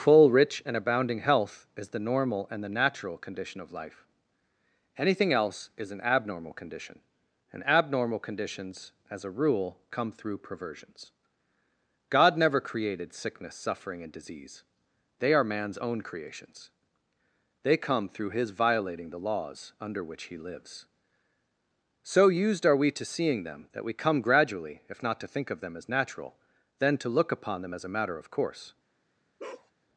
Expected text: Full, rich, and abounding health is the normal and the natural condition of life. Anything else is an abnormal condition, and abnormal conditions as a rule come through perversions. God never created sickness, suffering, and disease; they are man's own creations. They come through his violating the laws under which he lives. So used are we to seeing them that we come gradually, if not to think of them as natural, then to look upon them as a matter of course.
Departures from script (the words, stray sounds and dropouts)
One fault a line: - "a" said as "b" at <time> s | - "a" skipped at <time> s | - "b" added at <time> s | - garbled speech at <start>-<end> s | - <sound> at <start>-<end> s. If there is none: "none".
- bark at 29.4-29.7 s